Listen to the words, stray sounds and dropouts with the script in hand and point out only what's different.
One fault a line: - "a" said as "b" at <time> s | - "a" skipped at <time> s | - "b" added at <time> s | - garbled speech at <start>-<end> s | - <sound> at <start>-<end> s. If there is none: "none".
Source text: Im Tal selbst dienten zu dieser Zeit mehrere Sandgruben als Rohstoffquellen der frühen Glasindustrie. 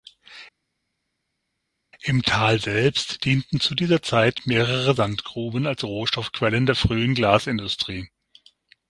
none